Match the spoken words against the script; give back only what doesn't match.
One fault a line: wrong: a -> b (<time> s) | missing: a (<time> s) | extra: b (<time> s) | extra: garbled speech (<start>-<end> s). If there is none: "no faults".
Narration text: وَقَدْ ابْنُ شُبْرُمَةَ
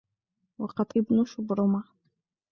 no faults